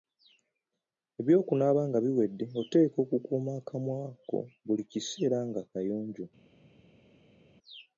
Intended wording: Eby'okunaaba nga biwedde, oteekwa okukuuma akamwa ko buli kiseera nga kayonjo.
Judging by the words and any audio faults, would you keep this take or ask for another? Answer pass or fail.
pass